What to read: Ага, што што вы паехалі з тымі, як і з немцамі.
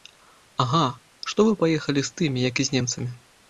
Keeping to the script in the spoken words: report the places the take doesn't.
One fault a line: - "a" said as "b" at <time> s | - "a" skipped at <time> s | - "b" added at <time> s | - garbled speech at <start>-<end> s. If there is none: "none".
- "што" skipped at 1.5 s